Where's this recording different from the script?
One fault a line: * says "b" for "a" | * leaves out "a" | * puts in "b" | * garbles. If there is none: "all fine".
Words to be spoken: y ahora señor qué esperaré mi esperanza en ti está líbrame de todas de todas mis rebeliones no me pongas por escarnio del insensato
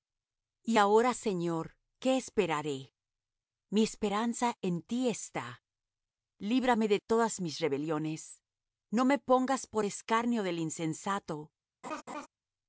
* leaves out "de todas"